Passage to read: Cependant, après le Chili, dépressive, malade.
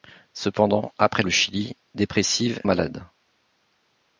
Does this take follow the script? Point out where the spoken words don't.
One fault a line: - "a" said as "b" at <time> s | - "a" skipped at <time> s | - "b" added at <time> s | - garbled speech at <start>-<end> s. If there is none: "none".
none